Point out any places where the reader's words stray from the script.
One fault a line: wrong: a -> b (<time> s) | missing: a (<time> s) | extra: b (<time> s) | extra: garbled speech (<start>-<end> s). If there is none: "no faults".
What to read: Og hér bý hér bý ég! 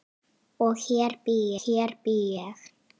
no faults